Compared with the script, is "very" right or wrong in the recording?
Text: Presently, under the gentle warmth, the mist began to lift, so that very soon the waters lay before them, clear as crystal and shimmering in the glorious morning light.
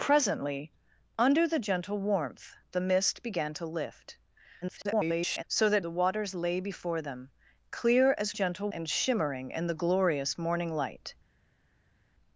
wrong